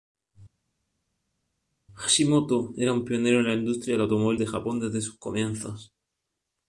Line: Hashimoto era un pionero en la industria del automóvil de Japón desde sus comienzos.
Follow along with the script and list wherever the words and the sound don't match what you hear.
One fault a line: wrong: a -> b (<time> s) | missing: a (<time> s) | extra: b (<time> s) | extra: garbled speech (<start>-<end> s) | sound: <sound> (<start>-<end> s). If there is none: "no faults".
no faults